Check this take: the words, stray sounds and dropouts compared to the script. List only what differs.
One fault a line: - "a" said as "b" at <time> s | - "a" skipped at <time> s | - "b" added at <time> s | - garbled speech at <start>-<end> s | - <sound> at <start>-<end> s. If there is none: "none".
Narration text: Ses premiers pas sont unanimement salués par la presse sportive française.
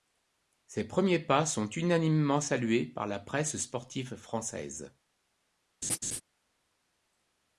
- laugh at 5.8-6.2 s